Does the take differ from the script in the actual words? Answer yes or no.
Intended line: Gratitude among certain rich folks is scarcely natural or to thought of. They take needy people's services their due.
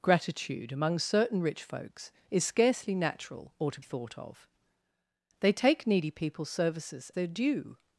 no